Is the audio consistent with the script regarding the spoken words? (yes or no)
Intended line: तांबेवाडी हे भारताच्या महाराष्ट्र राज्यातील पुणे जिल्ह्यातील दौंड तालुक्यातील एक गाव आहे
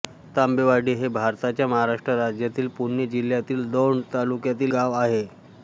no